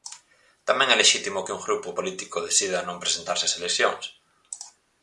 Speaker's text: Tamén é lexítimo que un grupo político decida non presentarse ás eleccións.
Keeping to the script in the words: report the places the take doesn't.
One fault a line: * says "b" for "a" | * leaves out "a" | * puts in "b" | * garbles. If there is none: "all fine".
all fine